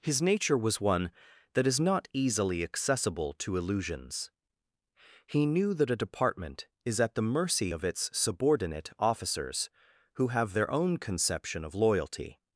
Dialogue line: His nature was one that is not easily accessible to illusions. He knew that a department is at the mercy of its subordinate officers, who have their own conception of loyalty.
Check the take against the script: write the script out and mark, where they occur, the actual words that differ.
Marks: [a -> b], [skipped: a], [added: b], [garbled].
His nature was one that is not easily accessible to illusions. He knew that a department is at the mercy of its subordinate officers, who have their own conception of loyalty.